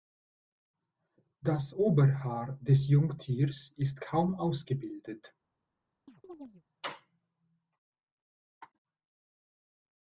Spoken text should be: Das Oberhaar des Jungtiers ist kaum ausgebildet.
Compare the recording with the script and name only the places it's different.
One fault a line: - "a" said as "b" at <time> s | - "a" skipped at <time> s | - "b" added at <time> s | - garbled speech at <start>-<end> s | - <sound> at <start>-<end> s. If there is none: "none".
- chirp at 6.1-6.6 s